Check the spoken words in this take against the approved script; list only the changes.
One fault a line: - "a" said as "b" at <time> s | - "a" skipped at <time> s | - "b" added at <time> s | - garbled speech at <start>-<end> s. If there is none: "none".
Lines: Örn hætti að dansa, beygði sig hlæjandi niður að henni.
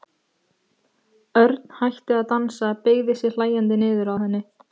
none